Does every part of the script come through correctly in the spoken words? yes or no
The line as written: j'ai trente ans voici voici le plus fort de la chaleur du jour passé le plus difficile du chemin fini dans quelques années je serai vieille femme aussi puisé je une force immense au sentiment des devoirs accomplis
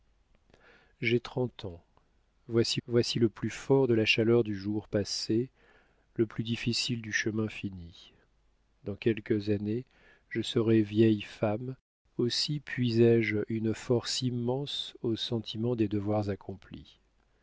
yes